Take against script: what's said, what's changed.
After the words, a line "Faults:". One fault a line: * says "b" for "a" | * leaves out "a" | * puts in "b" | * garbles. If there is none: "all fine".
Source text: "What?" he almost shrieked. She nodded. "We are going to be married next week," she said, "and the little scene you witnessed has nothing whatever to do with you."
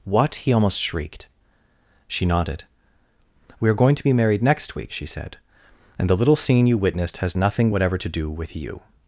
"What?" he almost shrieked. She nodded. "We are going to be married next week," she said, "and the little scene you witnessed has nothing whatever to do with you."
Faults:
all fine